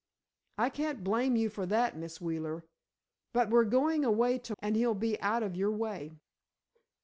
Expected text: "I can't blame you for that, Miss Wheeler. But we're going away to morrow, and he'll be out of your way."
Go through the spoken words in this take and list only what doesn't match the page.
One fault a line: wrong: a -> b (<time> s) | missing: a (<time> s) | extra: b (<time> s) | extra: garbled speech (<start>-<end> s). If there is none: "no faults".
missing: morrow (4.5 s)